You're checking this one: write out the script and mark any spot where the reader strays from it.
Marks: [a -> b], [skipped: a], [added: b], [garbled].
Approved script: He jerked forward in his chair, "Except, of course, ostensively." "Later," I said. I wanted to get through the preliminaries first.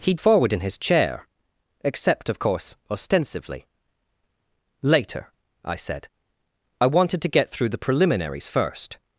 He [skipped: jerked] forward in his chair, "Except, of course, ostensively." "Later," I said. I wanted to get through the preliminaries first.